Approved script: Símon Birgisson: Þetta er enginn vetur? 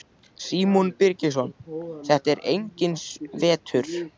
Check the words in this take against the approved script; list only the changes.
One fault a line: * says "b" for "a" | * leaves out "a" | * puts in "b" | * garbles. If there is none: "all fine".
all fine